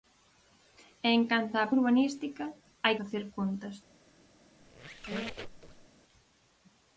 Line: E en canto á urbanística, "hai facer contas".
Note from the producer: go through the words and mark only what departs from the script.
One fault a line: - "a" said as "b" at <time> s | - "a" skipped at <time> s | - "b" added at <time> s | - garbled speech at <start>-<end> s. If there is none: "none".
none